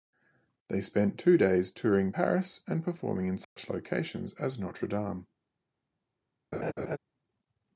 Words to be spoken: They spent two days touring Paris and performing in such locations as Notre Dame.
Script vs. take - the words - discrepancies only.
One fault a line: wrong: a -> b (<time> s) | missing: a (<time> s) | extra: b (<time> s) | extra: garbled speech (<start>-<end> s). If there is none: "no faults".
no faults